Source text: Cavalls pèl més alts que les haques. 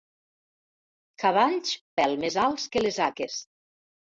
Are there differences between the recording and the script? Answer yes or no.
no